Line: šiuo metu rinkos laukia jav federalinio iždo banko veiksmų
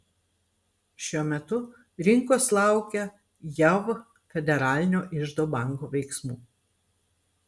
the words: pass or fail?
pass